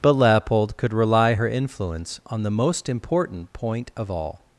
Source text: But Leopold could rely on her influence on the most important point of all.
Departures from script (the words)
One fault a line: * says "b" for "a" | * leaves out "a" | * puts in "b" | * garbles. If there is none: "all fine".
* leaves out "on"